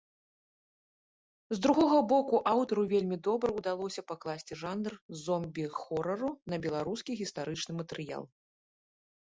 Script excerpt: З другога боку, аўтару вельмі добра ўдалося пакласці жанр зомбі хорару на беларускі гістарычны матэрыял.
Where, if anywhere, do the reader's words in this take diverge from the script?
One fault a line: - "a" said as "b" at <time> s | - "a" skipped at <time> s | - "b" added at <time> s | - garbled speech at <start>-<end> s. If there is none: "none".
none